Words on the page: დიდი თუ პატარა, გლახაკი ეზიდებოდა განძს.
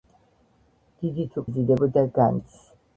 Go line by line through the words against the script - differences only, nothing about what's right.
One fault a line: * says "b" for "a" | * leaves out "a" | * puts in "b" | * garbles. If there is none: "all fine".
* leaves out "პატარა გლახაკი"